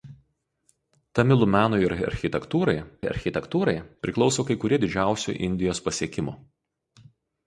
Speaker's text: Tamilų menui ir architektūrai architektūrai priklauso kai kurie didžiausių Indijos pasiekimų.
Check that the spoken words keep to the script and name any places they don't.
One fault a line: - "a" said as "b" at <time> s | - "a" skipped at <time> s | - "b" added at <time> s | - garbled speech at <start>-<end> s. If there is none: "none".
none